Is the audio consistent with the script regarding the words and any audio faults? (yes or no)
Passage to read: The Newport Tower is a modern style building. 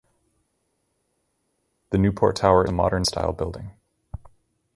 no